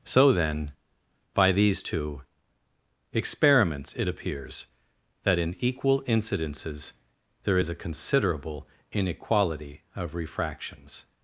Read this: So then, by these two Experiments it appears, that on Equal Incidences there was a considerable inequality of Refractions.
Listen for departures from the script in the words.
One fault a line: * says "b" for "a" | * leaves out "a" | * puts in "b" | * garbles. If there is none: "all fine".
* says "in" for "on"
* says "is" for "was"